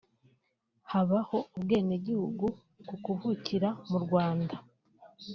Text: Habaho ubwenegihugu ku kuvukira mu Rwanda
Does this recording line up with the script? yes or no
yes